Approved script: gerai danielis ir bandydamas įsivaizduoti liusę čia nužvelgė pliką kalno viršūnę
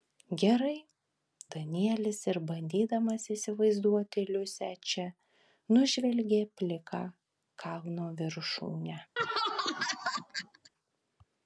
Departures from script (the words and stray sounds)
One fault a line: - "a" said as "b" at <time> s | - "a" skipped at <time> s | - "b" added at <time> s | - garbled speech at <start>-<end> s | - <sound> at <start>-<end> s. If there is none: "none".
- laugh at 9.2-10.7 s